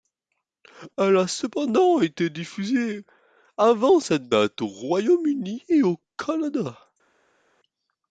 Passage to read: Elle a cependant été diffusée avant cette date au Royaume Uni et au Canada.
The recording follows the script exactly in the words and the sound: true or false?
true